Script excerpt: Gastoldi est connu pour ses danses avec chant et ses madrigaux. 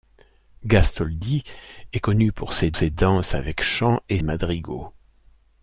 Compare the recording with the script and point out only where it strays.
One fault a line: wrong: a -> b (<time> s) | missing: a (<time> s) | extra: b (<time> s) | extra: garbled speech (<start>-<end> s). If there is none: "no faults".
extra: ses (2.7 s)
missing: ses (4.2 s)